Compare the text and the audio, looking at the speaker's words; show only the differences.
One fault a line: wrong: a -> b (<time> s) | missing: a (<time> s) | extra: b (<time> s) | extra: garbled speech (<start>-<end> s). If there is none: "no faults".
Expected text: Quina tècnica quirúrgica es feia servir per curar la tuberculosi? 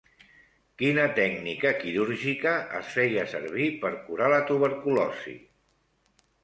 no faults